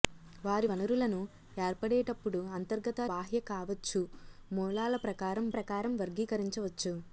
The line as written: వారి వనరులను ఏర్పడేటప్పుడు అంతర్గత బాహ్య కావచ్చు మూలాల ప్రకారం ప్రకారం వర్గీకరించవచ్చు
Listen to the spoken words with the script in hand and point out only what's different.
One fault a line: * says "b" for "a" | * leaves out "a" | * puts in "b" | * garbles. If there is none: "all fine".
all fine